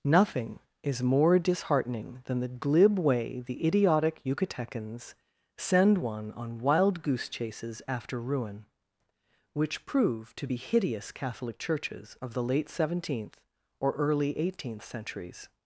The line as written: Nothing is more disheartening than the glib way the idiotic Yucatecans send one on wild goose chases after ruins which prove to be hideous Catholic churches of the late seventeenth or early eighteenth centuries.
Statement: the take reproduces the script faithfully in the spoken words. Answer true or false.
false